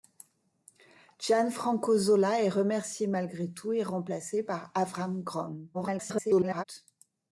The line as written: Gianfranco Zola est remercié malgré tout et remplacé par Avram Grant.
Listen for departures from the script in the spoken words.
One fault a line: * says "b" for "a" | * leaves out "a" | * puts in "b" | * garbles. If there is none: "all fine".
* garbles